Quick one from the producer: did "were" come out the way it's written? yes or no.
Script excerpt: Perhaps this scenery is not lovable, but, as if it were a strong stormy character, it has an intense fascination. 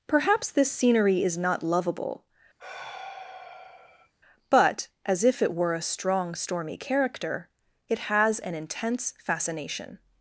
yes